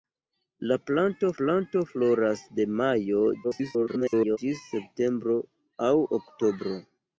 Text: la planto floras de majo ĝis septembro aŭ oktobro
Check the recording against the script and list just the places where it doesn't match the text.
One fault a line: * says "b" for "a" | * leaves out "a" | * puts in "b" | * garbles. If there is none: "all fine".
* puts in "planto"
* garbles